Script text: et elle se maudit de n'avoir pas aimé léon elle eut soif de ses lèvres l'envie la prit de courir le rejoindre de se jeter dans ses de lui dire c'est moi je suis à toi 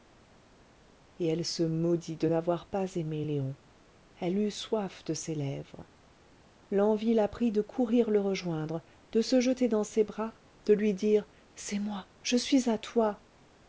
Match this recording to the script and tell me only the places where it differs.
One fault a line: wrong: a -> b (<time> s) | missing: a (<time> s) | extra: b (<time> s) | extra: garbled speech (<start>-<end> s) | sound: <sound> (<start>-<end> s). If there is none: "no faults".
extra: bras (10.0 s)